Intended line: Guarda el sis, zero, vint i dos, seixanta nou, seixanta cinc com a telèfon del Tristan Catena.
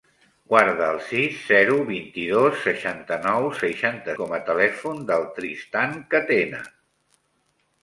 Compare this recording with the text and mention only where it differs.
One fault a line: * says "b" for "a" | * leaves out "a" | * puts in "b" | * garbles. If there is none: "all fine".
* leaves out "cinc"